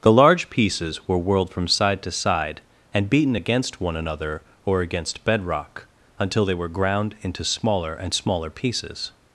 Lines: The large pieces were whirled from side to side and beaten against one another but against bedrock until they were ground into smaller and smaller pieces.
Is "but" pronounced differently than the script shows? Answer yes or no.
yes